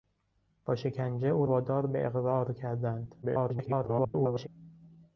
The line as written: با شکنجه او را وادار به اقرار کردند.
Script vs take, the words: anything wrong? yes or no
yes